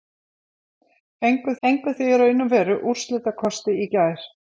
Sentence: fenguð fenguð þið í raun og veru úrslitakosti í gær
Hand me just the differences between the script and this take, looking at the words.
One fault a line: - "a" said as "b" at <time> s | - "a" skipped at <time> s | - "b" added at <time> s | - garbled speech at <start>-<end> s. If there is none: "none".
none